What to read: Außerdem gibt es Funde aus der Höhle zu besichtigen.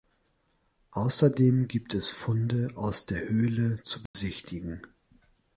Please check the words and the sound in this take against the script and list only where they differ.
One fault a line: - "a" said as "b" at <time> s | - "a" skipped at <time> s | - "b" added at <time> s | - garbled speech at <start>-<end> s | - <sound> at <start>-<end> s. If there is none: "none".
- dropout at 4.1-4.1 s